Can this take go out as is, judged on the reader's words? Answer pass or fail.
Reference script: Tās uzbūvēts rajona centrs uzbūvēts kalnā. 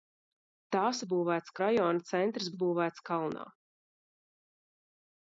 pass